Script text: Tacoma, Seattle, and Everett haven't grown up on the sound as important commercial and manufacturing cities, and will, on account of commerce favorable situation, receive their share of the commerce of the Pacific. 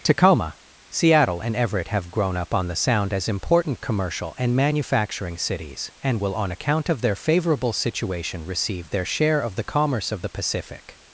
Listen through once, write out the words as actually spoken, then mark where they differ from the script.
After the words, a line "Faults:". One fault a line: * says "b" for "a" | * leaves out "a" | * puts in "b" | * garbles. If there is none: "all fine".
Tacoma, Seattle, and Everett have grown up on the sound as important commercial and manufacturing cities, and will, on account of their favorable situation, receive their share of the commerce of the Pacific.
Faults:
* says "have" for "haven't"
* says "their" for "commerce"